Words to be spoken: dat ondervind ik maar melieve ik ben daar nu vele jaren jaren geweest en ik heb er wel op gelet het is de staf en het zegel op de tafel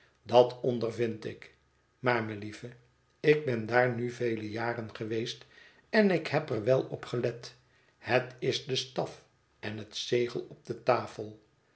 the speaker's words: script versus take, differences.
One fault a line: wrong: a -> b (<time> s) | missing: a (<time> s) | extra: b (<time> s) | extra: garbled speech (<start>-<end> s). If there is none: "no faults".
missing: jaren (5.0 s)